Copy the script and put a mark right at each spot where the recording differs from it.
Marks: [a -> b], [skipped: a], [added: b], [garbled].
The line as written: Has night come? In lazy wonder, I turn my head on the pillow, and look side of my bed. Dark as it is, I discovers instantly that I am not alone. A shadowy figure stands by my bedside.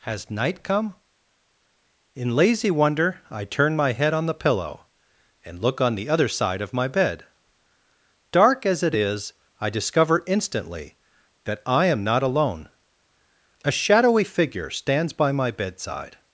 Has night come? In lazy wonder, I turn my head on the pillow, and look [added: on the other] side of my bed. Dark as it is, I [discovers -> discover] instantly that I am not alone. A shadowy figure stands by my bedside.